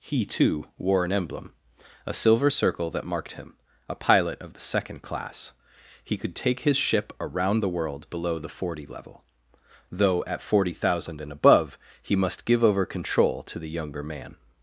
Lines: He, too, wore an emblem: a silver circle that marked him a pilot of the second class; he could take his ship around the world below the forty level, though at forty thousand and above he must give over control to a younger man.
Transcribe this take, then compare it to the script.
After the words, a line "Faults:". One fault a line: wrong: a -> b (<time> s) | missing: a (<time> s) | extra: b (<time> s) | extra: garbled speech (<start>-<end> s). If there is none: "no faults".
He, too, wore an emblem: a silver circle that marked him a pilot of the second class; he could take his ship around the world below the forty level, though at forty thousand and above he must give over control to the younger man.
Faults:
wrong: a -> the (13.6 s)